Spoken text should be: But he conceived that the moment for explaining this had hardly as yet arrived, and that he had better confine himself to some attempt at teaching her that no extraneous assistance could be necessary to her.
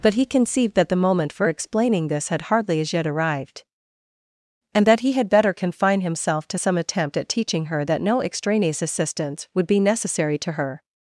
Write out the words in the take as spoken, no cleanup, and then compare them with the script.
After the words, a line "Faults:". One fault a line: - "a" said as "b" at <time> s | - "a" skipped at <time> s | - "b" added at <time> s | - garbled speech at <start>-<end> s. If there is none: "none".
But he conceived that the moment for explaining this had hardly as yet arrived, and that he had better confine himself to some attempt at teaching her that no extraneous assistance would be necessary to her.
Faults:
- "could" said as "would" at 9.5 s